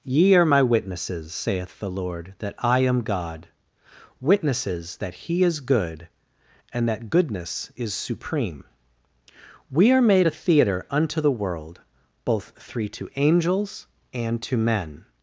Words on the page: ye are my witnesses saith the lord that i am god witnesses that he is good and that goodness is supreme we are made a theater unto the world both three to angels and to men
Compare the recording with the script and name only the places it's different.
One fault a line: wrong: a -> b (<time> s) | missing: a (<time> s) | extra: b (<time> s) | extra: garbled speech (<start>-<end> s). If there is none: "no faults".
no faults